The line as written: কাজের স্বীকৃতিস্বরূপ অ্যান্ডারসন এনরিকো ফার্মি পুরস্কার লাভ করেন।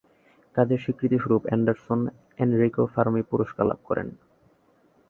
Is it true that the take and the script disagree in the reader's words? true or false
false